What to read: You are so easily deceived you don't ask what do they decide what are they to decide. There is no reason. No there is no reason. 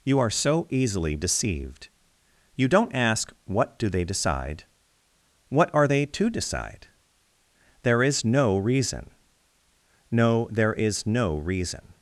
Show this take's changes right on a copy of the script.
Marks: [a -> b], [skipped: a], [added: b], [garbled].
You are so easily deceived you don't ask what do they decide what are they to decide. There is no reason. No there is no reason.